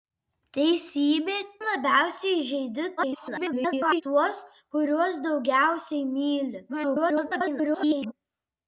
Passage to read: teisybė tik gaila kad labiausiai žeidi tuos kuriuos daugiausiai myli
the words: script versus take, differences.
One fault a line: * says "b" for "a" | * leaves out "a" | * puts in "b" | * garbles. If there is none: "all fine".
* leaves out "tik gaila kad"
* garbles
* garbles